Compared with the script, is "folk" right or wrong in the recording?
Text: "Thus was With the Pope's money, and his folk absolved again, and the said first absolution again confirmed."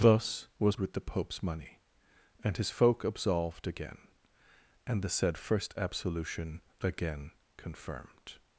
right